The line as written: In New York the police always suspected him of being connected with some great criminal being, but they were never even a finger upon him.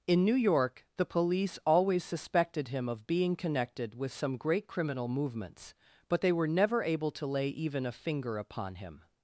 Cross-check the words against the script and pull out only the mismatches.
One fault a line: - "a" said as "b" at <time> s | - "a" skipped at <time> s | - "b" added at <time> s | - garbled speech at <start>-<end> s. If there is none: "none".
- "being" said as "movements" at 5.1 s
- "able to lay" added at 6.8 s